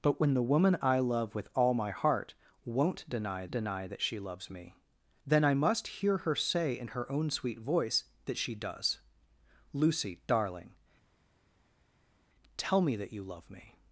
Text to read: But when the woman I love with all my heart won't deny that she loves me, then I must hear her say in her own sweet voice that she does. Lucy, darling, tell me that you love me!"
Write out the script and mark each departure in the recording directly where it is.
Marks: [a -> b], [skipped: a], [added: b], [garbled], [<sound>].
But when the woman I love with all my heart won't deny [added: deny] that she loves me, then I must hear her say in her own sweet voice that she does. Lucy, darling, tell me that you love me!"